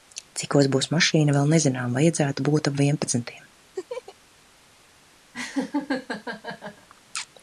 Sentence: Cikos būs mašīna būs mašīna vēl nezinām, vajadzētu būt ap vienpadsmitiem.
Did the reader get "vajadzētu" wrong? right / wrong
right